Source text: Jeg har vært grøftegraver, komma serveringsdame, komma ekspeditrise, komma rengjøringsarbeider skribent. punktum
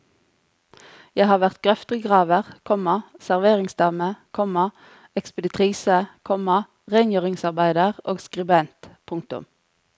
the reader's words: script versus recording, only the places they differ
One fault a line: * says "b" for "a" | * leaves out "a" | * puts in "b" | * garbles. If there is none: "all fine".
* puts in "og"